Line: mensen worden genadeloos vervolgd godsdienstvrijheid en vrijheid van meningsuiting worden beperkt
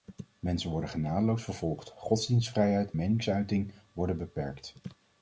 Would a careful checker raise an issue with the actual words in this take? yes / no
yes